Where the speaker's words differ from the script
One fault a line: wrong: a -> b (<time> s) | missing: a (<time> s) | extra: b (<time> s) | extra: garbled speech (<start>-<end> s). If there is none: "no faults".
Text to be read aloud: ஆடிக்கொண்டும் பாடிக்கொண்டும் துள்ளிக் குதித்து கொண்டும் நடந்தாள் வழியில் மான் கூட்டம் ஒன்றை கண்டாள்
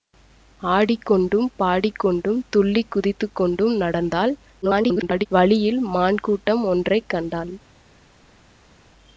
extra: garbled speech (4.6-5.3 s)